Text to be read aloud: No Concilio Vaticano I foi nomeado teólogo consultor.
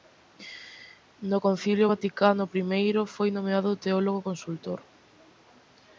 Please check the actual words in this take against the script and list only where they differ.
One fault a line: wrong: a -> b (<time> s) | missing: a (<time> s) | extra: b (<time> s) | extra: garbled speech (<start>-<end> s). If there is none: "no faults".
no faults